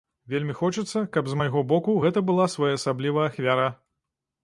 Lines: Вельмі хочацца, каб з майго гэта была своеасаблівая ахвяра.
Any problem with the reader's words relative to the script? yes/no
yes